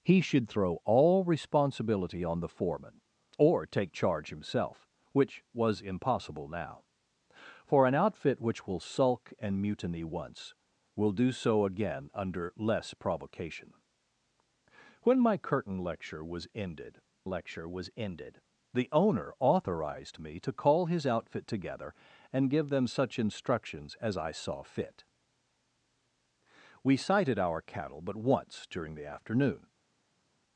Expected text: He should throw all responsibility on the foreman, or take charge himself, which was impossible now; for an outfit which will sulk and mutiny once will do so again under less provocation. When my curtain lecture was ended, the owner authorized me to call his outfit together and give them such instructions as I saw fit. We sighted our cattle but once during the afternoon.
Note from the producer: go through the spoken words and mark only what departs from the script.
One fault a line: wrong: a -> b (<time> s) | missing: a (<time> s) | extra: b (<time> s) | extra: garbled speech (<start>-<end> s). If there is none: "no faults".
extra: lecture was ended (17.2 s)